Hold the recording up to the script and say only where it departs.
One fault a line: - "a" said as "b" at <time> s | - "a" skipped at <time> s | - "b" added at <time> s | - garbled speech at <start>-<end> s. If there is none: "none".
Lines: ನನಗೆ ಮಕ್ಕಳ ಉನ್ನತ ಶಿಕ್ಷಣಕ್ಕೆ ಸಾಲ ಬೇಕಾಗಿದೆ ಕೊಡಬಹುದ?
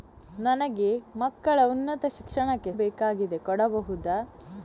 - "ಸಾಲ" skipped at 2.7 s